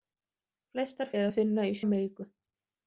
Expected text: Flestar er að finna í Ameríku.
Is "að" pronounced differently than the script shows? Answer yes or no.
no